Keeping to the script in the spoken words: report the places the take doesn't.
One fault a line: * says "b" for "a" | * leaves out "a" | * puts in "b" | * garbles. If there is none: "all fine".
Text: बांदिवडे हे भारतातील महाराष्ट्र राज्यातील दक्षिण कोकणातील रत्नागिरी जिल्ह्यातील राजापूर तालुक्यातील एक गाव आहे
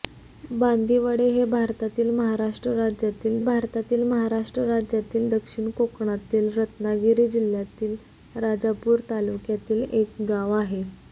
* puts in "भारतातील महाराष्ट्र राज्यातील"